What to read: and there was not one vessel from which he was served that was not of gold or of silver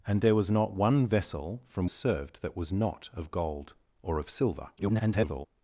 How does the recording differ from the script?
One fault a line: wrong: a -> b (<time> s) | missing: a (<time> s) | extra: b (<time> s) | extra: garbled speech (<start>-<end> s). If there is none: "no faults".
missing: which he was (1.9 s)
extra: garbled speech (4.8-5.5 s)